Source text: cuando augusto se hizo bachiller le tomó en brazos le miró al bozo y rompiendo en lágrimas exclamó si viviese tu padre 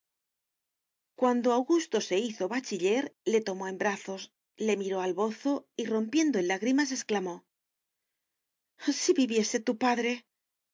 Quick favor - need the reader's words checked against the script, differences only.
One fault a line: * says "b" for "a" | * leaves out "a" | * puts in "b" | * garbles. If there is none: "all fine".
all fine